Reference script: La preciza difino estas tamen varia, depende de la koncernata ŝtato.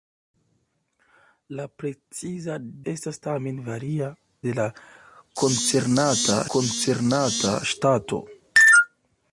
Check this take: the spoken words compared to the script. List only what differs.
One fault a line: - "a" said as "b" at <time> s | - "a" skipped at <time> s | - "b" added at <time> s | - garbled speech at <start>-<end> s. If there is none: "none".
- "difino" skipped at 2.5 s
- "depende" skipped at 4.1 s
- "koncernata" added at 6.6 s